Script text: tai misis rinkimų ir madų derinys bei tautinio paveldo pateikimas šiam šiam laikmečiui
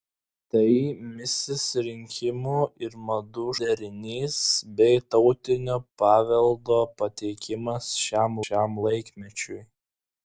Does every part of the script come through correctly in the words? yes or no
yes